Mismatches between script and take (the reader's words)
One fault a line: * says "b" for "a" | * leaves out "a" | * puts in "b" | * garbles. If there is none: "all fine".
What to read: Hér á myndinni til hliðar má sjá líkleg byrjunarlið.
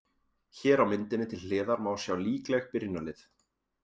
all fine